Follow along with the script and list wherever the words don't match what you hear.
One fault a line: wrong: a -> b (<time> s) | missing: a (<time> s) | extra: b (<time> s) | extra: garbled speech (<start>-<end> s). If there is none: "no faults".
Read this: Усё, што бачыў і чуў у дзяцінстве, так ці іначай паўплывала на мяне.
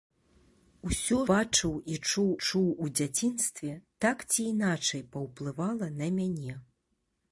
missing: што (1.2 s)
extra: чуў (2.5 s)